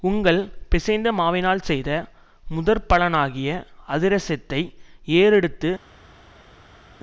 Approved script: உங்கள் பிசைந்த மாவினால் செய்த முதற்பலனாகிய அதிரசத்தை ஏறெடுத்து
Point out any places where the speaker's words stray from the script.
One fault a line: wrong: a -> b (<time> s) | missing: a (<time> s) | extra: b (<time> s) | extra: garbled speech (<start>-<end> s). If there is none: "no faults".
no faults